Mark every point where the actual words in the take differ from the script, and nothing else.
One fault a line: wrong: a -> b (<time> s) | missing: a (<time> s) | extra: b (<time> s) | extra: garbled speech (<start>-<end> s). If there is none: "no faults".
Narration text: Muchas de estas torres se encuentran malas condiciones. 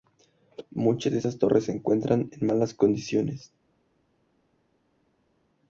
extra: en (2.3 s)